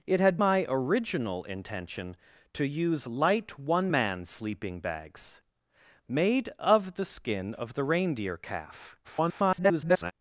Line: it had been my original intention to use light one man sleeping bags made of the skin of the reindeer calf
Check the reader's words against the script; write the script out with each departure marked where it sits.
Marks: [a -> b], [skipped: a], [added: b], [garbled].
it had [skipped: been] my original intention to use light one man sleeping bags made of the skin of the reindeer calf [garbled]